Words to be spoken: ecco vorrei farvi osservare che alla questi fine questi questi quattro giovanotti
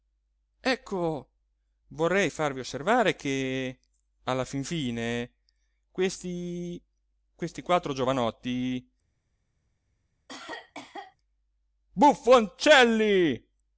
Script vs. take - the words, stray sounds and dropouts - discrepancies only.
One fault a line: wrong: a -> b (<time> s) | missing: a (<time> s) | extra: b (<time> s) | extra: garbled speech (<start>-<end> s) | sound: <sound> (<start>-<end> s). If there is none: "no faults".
wrong: questi -> fin (4.4 s)
sound: cough (10.3-11.2 s)